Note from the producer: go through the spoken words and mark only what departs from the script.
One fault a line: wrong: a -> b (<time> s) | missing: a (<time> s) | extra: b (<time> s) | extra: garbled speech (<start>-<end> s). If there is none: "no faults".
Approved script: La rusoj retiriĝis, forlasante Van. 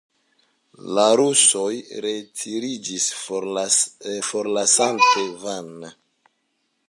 no faults